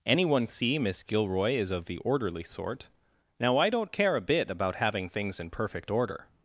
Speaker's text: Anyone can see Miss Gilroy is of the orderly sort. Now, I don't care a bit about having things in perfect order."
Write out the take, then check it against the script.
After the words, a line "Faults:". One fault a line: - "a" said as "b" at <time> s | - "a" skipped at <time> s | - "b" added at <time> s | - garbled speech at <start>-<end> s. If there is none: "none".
Anyone see Miss Gilroy is of the orderly sort. Now, I don't care a bit about having things in perfect order."
Faults:
- "can" skipped at 0.5 s